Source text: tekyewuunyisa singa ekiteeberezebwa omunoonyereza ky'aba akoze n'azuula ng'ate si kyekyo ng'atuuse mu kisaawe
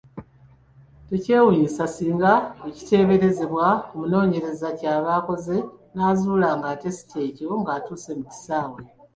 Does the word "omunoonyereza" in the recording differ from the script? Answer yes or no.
no